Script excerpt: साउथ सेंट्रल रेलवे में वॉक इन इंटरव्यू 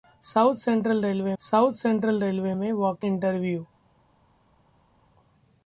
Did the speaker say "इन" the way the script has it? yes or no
no